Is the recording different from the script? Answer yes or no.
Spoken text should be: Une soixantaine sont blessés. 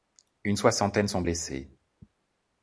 no